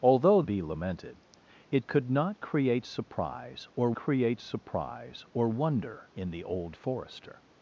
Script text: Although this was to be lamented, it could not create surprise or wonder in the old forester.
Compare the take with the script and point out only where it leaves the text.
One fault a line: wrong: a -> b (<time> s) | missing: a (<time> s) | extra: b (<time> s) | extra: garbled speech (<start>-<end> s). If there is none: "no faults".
missing: this was to (0.4 s)
extra: create surprise or (3.9 s)